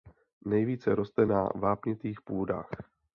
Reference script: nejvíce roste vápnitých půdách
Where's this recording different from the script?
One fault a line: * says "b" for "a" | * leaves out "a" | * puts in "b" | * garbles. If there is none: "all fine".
* puts in "na"